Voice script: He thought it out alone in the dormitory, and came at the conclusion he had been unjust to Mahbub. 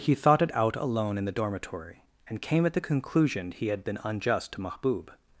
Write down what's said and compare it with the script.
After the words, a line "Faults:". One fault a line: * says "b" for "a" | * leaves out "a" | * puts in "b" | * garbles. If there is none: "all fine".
He thought it out alone in the dormitory, and came at the conclusion he had been unjust to Mahbub.
Faults:
all fine